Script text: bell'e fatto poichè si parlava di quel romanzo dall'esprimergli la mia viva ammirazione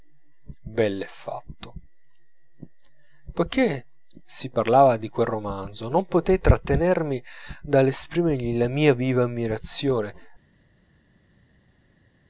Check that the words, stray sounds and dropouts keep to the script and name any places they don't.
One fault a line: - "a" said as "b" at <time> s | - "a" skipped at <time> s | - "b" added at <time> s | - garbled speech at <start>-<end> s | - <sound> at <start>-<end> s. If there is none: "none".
- "non potei trattenermi" added at 5.9 s